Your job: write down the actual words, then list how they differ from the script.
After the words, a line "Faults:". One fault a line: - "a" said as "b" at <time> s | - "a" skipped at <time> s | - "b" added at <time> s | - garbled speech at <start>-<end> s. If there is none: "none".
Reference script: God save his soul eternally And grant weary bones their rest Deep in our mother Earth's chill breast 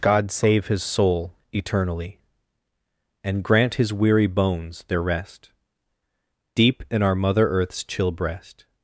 God save his soul eternally And grant his weary bones their rest Deep in our mother Earth's chill breast
Faults:
- "his" added at 3.7 s